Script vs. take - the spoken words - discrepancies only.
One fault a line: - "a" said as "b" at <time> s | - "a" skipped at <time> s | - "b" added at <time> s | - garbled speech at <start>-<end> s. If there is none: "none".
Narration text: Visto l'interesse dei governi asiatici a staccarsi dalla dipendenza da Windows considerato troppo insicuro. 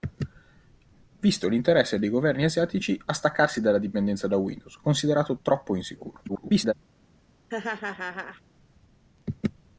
- garbled speech at 6.3-6.7 s